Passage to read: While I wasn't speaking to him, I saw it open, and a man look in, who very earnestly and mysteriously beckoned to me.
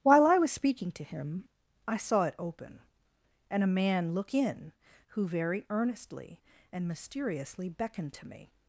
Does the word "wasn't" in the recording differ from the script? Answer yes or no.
yes